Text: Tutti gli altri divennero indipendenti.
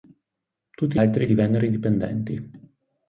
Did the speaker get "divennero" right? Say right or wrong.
right